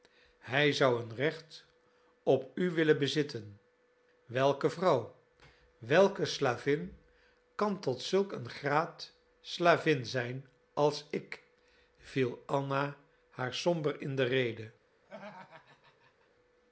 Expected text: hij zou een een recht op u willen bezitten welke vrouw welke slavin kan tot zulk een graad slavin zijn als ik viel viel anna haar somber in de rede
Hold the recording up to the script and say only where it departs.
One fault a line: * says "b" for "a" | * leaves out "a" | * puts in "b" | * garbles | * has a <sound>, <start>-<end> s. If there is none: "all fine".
* leaves out "een"
* leaves out "viel"
* has a laugh, 15.0-16.3 s